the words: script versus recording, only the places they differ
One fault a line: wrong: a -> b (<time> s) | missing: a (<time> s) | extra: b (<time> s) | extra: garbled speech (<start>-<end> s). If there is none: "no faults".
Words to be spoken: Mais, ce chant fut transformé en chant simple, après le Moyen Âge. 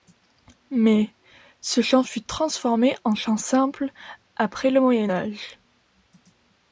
no faults